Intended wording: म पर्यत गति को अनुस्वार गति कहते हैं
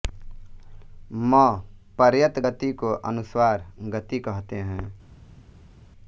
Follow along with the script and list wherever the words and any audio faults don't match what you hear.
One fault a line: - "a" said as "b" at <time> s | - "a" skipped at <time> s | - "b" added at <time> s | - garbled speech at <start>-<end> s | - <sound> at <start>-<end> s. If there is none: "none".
none